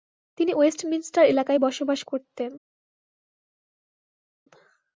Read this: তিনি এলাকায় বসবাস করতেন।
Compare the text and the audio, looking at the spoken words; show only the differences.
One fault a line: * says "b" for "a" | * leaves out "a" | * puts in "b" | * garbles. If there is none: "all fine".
* puts in "ওয়েস্টমিনস্টার"